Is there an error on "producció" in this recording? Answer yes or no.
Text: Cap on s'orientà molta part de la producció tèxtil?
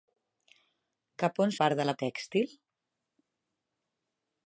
yes